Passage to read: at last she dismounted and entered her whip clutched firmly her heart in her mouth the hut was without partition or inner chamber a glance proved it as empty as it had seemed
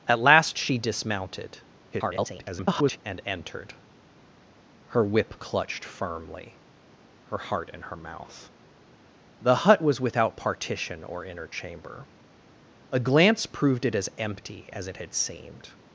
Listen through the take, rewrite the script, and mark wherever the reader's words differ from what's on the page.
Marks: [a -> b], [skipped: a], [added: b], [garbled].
at last she dismounted [garbled] and entered her whip clutched firmly her heart in her mouth the hut was without partition or inner chamber a glance proved it as empty as it had seemed